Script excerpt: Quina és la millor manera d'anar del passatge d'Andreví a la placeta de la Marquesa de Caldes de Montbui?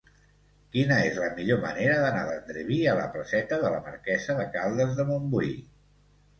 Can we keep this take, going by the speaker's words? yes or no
no